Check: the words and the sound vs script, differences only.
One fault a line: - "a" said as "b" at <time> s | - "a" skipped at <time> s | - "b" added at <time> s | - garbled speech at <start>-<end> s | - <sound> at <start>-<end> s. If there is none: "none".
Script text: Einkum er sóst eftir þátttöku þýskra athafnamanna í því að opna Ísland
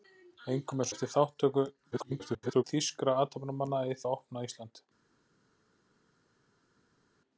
- "sóst" skipped at 0.9 s
- garbled speech at 1.9-2.6 s
- "því" skipped at 4.0 s